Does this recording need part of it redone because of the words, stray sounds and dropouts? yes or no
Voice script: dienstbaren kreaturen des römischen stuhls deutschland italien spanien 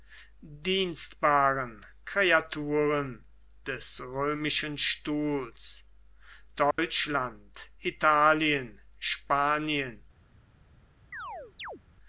yes